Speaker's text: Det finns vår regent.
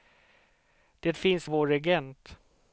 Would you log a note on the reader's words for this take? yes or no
no